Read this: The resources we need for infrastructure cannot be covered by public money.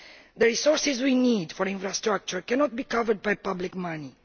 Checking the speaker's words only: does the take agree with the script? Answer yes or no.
yes